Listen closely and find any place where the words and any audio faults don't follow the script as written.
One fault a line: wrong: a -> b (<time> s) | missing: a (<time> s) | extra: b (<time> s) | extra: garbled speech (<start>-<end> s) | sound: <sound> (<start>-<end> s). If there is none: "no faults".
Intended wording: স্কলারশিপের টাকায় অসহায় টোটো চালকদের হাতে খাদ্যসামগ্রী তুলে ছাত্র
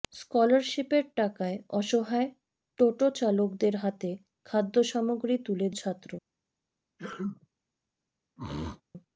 sound: sneeze (7.0-7.5 s)
sound: throat clearing (8.4-8.8 s)